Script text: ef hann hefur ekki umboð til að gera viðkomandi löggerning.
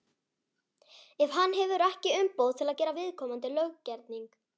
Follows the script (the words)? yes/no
yes